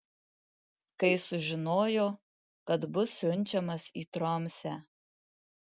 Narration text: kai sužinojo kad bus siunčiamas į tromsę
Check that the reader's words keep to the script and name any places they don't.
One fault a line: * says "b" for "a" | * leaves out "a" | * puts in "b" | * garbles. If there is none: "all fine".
all fine